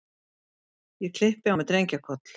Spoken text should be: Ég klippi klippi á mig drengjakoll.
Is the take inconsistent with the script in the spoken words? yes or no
yes